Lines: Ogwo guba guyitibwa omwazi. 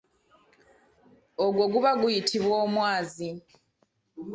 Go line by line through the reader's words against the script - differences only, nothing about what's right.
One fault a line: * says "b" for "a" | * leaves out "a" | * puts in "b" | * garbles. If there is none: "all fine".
all fine